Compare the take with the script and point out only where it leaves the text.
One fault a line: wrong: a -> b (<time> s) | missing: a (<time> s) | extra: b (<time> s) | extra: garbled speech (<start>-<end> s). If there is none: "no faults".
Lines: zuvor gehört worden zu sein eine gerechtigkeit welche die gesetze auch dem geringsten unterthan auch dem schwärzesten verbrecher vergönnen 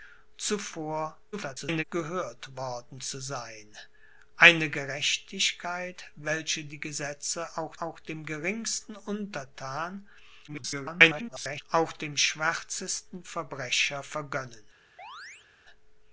extra: garbled speech (1.3-1.8 s)
extra: auch (7.8 s)
extra: garbled speech (10.5-11.6 s)